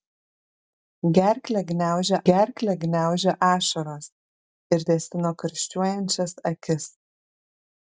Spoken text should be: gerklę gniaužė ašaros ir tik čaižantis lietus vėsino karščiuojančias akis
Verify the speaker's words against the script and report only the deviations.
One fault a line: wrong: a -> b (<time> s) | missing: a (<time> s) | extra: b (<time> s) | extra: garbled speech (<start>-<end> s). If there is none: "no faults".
extra: gerklę gniaužė (2.3 s)
missing: tik čaižantis lietus (4.8 s)